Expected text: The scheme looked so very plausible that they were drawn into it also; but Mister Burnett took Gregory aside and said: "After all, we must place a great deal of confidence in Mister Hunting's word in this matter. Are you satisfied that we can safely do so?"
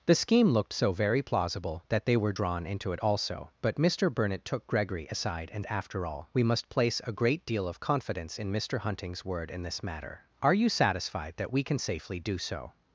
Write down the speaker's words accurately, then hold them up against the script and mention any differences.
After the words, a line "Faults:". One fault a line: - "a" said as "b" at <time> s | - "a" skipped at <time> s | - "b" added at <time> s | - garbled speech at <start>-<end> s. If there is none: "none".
The scheme looked so very plausible that they were drawn into it also; but Mister Burnett took Gregory aside and: "After all, we must place a great deal of confidence in Mister Hunting's word in this matter. Are you satisfied that we can safely do so?"
Faults:
- "said" skipped at 5.7 s